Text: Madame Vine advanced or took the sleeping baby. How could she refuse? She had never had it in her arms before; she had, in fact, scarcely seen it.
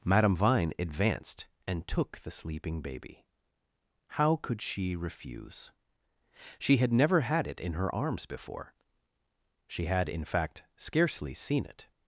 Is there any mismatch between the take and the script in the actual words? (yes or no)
yes